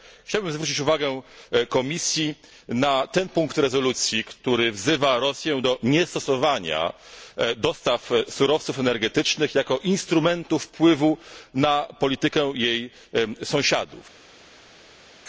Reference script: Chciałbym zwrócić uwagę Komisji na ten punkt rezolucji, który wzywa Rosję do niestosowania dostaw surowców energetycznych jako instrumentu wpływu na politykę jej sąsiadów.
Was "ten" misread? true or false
false